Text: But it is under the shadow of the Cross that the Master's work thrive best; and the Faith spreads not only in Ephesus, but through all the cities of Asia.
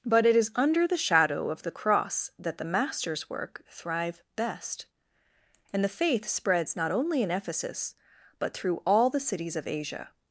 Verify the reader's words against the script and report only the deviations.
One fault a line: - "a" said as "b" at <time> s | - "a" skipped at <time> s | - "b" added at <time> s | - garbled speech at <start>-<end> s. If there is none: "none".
none